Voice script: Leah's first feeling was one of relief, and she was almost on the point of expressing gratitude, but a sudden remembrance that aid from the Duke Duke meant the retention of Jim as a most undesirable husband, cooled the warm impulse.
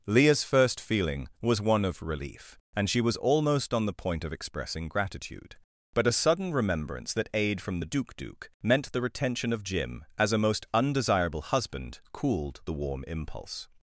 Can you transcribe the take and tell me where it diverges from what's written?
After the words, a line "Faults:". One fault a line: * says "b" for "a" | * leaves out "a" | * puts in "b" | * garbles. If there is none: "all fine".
Leah's first feeling was one of relief, and she was almost on the point of expressing gratitude, but a sudden remembrance that aid from the Duke Duke meant the retention of Jim as a most undesirable husband, cooled the warm impulse.
Faults:
all fine